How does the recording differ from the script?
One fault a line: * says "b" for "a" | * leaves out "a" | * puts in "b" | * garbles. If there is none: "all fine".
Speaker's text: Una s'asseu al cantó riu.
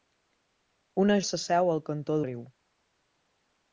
all fine